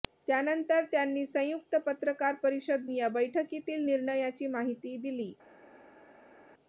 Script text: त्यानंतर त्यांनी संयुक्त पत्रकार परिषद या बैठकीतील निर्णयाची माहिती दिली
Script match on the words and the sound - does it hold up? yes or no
yes